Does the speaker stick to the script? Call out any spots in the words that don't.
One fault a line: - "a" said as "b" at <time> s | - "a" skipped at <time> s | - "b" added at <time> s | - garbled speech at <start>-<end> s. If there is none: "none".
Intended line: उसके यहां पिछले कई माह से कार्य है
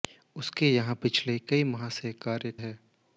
none